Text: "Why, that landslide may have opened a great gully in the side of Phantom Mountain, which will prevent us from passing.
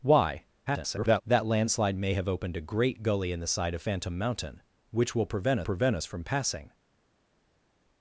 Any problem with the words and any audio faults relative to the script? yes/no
yes